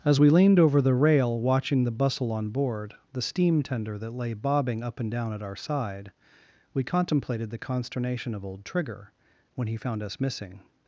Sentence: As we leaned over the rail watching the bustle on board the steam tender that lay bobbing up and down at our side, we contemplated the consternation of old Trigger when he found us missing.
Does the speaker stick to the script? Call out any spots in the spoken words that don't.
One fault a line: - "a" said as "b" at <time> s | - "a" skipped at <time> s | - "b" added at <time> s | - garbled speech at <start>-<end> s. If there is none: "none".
none